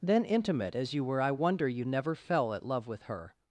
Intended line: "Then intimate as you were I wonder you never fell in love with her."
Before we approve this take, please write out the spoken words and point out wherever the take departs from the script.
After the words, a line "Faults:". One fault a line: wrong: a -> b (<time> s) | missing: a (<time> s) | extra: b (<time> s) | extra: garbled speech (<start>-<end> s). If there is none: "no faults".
"Then intimate as you were I wonder you never fell at love with her."
Faults:
wrong: in -> at (2.5 s)